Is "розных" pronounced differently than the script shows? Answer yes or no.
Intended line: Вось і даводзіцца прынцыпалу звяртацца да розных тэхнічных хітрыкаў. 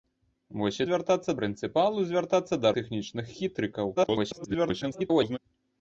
yes